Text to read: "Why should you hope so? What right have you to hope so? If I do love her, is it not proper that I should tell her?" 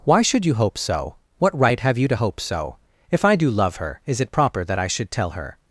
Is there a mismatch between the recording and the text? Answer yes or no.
yes